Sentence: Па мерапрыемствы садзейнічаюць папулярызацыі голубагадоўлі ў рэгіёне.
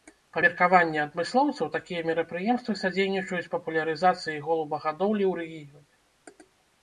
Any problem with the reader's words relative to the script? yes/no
yes